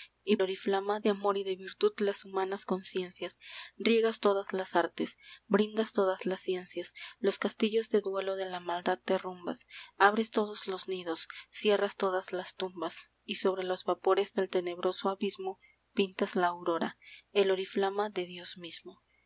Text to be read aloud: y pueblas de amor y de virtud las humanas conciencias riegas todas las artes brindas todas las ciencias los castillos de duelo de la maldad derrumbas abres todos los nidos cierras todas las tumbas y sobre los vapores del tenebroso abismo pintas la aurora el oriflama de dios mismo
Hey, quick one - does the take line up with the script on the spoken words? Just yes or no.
no